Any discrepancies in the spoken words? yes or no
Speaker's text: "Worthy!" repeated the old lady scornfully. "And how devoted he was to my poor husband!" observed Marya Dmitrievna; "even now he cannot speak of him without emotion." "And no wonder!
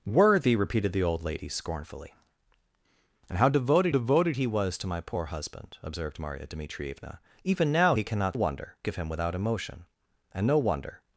yes